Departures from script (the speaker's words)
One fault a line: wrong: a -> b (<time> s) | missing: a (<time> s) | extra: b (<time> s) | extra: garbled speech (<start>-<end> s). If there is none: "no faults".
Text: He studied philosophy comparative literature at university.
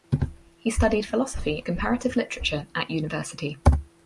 no faults